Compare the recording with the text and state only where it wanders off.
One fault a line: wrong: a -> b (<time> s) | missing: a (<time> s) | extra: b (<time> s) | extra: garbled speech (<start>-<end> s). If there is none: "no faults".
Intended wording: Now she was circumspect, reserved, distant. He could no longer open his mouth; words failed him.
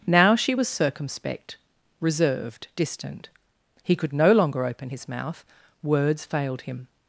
no faults